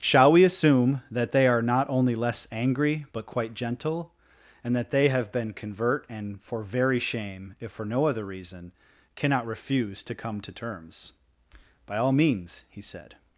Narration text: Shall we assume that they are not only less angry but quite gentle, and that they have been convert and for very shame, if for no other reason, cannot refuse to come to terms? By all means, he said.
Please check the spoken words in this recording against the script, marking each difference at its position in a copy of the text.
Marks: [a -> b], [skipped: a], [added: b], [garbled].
Shall we assume that they are not only less angry but quite gentle, and that they have been convert and for very shame, if for no other reason, cannot refuse to come to terms? By all means, he said.